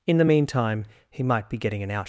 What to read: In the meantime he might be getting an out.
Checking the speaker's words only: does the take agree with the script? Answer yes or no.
yes